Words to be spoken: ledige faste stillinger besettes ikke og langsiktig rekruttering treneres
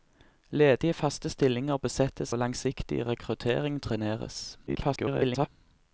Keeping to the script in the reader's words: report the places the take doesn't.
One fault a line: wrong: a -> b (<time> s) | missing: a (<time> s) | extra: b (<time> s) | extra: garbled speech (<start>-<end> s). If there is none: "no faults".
missing: ikke (2.3 s)
extra: garbled speech (4.7-5.5 s)